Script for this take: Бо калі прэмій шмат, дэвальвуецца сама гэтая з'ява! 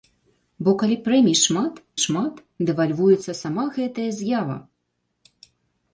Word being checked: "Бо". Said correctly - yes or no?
yes